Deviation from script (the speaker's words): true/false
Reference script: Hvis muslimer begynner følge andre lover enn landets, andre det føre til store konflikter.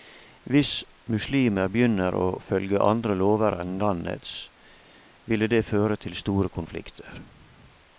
true